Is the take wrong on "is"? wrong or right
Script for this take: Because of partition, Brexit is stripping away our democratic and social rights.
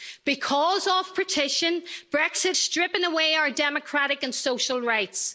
wrong